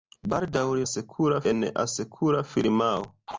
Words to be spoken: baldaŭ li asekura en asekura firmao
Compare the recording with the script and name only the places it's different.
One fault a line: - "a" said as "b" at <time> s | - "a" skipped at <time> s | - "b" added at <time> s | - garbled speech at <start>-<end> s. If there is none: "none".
none